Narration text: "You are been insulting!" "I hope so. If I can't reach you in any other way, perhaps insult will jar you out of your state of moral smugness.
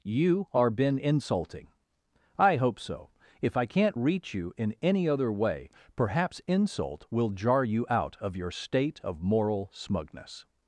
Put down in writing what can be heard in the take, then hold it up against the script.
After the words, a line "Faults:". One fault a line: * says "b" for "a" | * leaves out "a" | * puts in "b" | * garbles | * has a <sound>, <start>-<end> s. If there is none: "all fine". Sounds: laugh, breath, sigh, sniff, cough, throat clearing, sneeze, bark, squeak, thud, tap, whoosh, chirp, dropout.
"You are been insulting!" "I hope so. If I can't reach you in any other way, perhaps insult will jar you out of your state of moral smugness.
Faults:
all fine